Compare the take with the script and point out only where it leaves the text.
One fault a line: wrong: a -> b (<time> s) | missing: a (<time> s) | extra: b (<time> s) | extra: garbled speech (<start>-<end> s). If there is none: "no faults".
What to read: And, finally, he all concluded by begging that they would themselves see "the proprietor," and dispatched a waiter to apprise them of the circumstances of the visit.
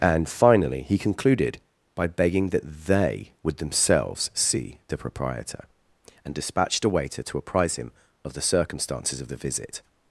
missing: all (1.0 s)
wrong: them -> him (7.8 s)